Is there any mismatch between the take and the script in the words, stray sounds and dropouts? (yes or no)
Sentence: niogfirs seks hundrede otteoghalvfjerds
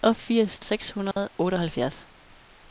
yes